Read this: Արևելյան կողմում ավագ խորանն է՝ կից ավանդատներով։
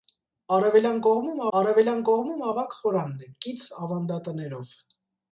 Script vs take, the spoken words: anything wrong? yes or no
yes